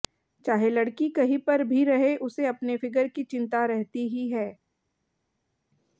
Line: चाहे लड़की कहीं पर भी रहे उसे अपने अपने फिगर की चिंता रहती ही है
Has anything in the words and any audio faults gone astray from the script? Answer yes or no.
yes